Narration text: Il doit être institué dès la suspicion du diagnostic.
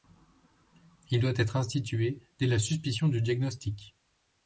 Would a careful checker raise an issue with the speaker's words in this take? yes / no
no